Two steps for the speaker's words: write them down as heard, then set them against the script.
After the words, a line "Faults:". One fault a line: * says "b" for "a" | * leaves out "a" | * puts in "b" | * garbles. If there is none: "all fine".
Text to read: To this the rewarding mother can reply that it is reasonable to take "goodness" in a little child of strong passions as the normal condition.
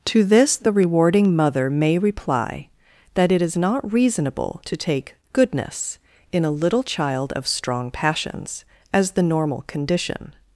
To this the rewarding mother may reply that it is not reasonable to take "goodness" in a little child of strong passions as the normal condition.
Faults:
* says "may" for "can"
* puts in "not"